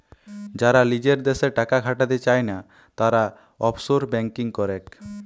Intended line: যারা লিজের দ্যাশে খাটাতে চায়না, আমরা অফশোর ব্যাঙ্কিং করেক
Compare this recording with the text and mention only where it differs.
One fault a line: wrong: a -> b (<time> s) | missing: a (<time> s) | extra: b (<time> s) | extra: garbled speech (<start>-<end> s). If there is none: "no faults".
extra: টাকা (1.6 s)
wrong: আমরা -> তারা (3.0 s)